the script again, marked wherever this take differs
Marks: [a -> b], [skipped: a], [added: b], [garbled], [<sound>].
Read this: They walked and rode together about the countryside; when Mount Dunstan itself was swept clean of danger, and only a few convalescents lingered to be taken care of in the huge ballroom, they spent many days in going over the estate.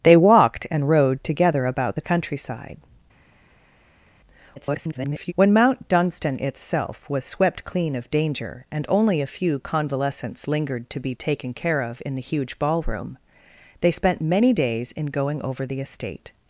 They walked and rode together about the countryside; [garbled] when Mount Dunstan itself was swept clean of danger, and only a few convalescents lingered to be taken care of in the huge ballroom, they spent many days in going over the estate.